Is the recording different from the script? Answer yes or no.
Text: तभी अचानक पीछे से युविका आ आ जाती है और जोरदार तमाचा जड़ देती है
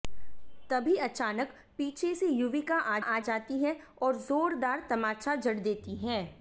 no